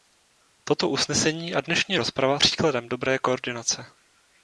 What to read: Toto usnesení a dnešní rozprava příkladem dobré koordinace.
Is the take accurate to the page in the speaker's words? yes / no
yes